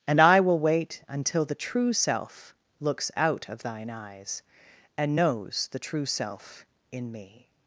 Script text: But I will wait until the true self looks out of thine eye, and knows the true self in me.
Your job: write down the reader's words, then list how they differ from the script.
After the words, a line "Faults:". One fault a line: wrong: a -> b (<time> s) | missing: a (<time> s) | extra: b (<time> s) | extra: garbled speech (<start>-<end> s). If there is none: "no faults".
And I will wait until the true self looks out of thine eyes, and knows the true self in me.
Faults:
wrong: But -> And (0.1 s)
wrong: eye -> eyes (3.9 s)